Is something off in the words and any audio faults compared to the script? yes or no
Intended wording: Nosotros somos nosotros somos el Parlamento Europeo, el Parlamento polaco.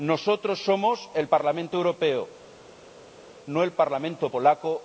yes